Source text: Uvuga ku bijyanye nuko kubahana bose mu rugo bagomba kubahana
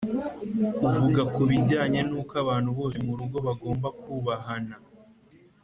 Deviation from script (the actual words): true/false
true